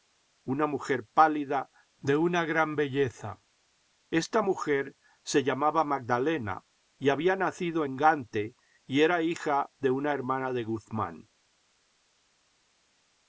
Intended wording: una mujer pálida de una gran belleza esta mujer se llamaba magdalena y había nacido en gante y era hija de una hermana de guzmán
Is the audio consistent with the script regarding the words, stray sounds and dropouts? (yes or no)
yes